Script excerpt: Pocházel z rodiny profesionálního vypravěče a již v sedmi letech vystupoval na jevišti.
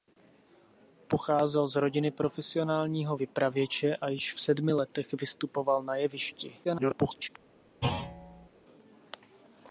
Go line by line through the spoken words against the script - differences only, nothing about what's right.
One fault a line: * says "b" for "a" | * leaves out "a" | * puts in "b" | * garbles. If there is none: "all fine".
* garbles